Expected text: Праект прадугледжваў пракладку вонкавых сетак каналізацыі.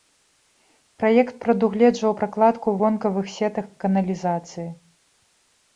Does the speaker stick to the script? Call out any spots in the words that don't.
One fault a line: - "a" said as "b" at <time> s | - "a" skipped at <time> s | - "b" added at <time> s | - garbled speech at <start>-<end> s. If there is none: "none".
none